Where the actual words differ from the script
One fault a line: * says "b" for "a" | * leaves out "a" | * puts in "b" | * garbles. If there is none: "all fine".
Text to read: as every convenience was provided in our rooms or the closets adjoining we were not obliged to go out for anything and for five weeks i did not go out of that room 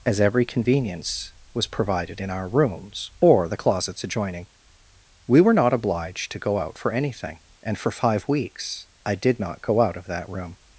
all fine